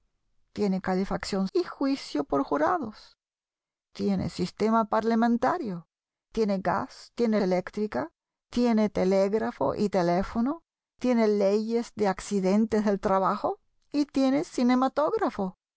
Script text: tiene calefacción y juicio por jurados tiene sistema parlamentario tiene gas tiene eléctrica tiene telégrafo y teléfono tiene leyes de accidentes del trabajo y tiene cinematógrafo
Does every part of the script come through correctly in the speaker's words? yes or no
yes